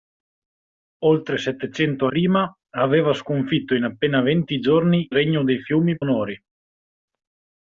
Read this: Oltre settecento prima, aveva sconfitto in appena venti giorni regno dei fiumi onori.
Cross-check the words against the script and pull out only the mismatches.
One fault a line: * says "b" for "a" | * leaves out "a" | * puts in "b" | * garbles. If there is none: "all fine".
all fine